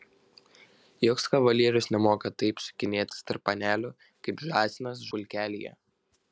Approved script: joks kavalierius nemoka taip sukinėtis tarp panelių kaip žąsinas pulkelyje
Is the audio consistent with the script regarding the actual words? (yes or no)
yes